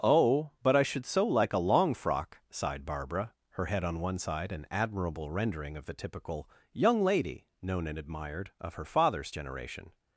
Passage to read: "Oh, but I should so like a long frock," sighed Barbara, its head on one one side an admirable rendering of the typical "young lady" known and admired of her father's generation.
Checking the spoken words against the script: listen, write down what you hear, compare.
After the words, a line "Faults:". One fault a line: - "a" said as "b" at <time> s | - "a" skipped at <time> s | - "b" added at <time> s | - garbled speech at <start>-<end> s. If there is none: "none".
"Oh, but I should so like a long frock," sighed Barbara, her head on one side an admirable rendering of the typical "young lady" known and admired of her father's generation.
Faults:
- "its" said as "her" at 3.5 s
- "one" skipped at 4.2 s